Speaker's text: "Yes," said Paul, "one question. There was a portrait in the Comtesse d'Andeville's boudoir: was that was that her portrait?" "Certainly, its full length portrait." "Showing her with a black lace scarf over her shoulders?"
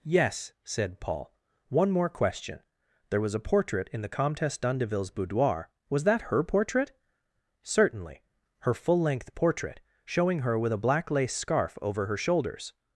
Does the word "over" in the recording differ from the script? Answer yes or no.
no